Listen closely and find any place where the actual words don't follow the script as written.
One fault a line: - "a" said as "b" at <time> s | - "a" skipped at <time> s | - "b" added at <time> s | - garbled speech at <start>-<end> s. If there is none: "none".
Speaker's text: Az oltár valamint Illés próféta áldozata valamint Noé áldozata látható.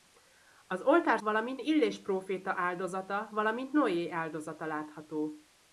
none